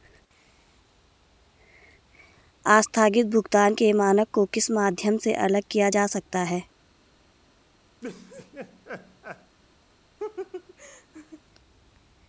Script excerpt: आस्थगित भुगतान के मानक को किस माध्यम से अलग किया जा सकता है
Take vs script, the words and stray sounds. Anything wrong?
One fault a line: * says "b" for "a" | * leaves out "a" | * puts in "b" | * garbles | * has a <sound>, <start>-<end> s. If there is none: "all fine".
* has a laugh, 8.0-9.6 s
* has a laugh, 10.2-11.4 s